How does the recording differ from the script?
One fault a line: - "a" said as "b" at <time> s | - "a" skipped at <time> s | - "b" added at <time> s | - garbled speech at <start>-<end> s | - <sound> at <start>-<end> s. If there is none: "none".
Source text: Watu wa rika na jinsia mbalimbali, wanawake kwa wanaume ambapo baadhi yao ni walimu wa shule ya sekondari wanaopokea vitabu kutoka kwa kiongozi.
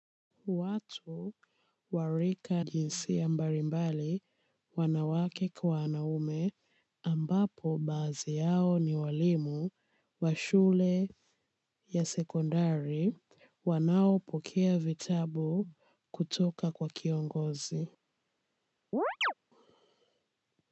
- "na" skipped at 2.6 s
- chirp at 18.9-19.3 s